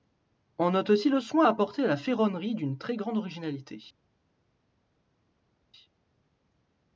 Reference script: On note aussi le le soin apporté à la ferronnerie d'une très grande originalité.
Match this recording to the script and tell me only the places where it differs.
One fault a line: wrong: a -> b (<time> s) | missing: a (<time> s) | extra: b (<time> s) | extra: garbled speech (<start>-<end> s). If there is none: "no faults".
missing: le (1.2 s)